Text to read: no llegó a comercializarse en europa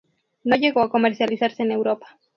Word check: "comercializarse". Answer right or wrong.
right